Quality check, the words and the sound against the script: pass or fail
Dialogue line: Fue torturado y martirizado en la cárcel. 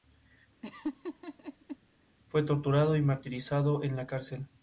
fail